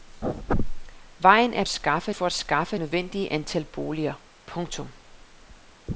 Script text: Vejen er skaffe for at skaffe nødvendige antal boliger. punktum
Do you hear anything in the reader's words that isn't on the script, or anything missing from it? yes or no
no